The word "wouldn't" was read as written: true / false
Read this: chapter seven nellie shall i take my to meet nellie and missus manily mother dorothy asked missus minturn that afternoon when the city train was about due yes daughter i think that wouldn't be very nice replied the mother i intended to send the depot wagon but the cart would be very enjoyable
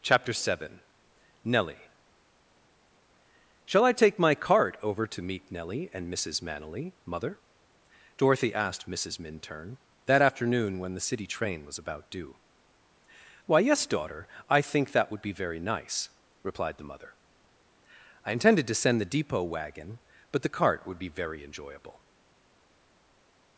false